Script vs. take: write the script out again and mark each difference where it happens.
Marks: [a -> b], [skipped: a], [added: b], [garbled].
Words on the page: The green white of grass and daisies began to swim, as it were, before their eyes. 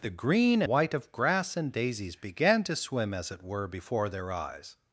The green white of grass and daisies began to swim, as it were, before their eyes.